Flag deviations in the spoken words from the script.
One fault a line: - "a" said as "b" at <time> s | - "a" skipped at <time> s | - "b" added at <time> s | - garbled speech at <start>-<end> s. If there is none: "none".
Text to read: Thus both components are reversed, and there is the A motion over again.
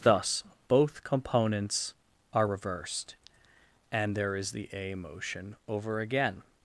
none